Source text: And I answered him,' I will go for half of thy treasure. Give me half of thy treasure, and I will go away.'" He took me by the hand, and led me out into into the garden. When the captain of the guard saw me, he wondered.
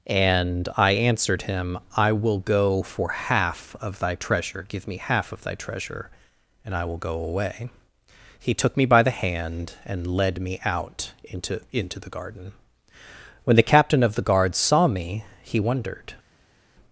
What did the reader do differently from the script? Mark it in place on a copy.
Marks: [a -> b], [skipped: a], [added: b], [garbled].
And I answered him,' I will go for half of thy treasure. Give me half of thy treasure, and I will go away.'" He took me by the hand, and led me out into into the garden. When the captain of the guard saw me, he wondered.